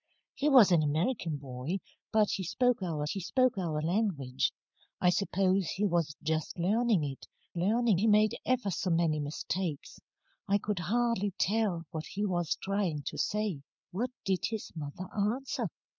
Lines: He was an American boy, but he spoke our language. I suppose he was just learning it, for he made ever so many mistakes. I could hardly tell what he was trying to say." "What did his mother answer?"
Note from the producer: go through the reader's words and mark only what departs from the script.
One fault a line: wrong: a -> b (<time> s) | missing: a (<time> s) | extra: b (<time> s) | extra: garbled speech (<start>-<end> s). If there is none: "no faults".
extra: he spoke our (3.1 s)
wrong: for -> learning (7.6 s)